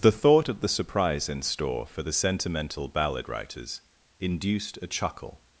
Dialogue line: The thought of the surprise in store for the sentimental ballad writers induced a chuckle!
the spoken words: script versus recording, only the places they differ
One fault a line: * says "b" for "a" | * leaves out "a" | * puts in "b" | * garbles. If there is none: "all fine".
all fine